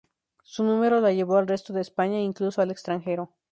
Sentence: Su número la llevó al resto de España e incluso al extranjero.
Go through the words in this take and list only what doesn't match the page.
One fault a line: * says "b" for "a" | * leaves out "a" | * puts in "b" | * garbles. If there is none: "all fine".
all fine